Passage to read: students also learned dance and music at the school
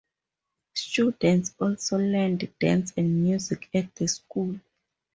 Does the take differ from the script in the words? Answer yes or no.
no